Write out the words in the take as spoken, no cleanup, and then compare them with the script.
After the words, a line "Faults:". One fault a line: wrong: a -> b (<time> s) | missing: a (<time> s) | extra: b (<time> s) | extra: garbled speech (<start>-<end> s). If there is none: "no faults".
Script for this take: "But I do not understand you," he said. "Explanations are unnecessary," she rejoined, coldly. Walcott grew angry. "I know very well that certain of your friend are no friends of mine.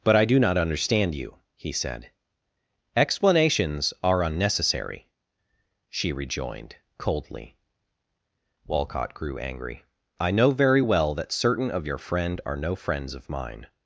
"But I do not understand you," he said. "Explanations are unnecessary," she rejoined, coldly. Walcott grew angry. "I know very well that certain of your friend are no friends of mine.
Faults:
no faults